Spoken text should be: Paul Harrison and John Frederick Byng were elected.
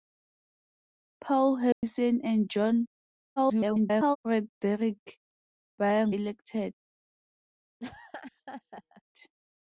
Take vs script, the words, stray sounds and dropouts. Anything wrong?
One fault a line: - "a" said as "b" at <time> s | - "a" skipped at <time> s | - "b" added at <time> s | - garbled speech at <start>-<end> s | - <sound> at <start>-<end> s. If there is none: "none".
- dropout at 1.7-1.8 s
- garbled speech at 3.4-4.2 s
- "were" skipped at 6.2 s
- laugh at 7.8-9.0 s